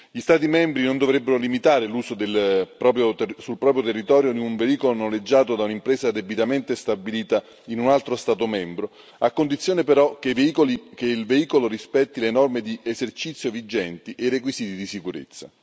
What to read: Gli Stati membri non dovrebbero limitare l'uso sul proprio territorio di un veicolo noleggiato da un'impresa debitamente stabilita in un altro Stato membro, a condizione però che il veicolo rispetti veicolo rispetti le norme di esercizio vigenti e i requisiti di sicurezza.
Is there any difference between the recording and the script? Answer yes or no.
yes